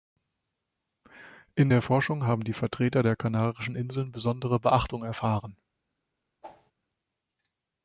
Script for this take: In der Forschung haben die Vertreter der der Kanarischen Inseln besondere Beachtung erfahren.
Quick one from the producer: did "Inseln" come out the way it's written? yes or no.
yes